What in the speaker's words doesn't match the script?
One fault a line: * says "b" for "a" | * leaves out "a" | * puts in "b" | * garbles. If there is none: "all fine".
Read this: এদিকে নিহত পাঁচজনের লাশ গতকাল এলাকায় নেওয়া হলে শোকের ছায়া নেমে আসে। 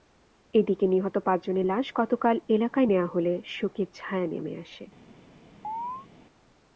all fine